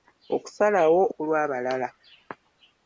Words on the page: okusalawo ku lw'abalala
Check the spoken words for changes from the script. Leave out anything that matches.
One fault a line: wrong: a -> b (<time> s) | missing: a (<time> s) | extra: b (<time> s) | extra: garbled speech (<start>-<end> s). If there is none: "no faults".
no faults